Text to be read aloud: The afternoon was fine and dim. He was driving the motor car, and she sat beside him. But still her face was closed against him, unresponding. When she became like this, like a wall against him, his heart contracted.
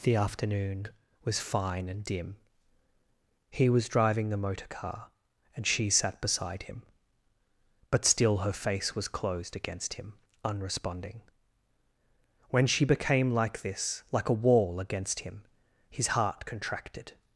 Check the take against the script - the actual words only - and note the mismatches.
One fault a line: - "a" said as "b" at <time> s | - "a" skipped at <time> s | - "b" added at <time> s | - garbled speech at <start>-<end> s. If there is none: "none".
none